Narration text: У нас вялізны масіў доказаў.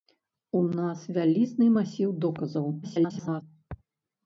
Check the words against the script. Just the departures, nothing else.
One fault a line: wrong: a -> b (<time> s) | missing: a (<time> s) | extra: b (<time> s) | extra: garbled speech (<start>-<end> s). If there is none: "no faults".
extra: garbled speech (2.8-3.4 s)